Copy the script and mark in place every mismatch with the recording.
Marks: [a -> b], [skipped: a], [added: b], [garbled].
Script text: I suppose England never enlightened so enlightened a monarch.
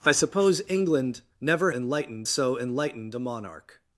I suppose England never enlightened so enlightened a monarch.